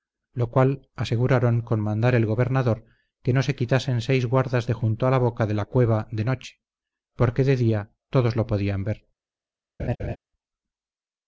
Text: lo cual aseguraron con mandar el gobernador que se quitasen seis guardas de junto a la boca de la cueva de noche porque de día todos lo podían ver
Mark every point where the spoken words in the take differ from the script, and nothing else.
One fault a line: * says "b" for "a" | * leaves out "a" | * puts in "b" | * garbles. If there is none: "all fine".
* puts in "no"